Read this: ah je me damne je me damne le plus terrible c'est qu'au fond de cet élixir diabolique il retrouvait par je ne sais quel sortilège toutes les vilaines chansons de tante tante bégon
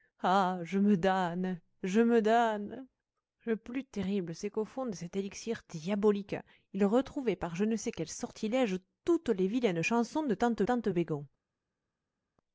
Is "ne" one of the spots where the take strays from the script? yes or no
no